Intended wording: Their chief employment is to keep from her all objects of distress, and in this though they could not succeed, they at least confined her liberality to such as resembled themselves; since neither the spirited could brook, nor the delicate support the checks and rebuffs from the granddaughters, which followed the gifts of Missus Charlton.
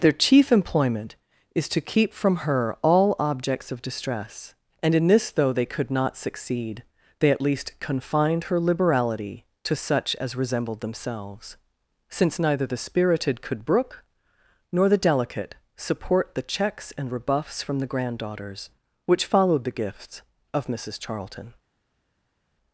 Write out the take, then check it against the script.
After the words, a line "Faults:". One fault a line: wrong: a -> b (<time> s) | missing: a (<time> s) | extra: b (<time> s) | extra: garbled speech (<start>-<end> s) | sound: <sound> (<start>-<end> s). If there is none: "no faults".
Their chief employment is to keep from her all objects of distress, and in this though they could not succeed, they at least confined her liberality to such as resembled themselves; since neither the spirited could brook, nor the delicate support the checks and rebuffs from the granddaughters, which followed the gifts of Missus Charlton.
Faults:
no faults